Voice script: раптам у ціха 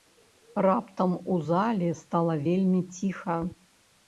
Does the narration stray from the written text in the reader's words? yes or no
yes